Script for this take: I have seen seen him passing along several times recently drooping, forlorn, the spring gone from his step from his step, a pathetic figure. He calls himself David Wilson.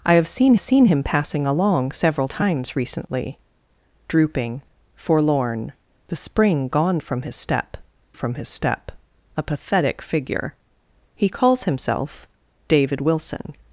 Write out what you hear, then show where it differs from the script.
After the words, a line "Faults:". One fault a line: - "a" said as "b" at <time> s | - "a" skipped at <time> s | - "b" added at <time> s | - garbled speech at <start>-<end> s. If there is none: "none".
I have seen seen him passing along several times recently drooping, forlorn, the spring gone from his step from his step, a pathetic figure. He calls himself David Wilson.
Faults:
none